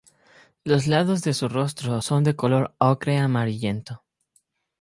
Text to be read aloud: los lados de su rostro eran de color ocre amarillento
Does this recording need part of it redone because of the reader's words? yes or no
yes